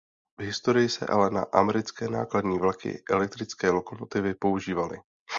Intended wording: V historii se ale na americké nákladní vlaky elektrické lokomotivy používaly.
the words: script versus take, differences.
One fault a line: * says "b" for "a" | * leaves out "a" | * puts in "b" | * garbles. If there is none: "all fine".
all fine